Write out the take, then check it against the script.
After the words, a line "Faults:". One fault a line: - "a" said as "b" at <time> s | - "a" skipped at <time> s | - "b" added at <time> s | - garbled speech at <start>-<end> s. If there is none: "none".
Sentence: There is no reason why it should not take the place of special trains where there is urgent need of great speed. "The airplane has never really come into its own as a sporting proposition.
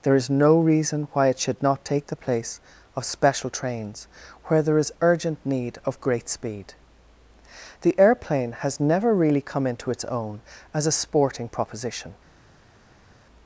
There is no reason why it should not take the place of special trains where there is urgent need of great speed. "The airplane has never really come into its own as a sporting proposition.
Faults:
none